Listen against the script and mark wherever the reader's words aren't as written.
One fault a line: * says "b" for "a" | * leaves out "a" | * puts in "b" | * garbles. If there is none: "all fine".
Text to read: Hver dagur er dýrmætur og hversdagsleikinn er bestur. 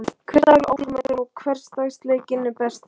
all fine